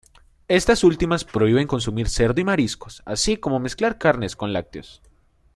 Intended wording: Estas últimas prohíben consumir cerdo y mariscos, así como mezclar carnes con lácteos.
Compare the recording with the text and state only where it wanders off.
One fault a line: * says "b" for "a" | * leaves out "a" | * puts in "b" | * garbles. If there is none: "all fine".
all fine